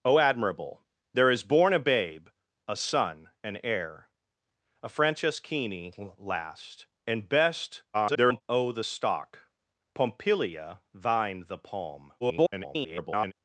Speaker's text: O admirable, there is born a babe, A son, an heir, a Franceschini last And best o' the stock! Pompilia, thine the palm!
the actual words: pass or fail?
fail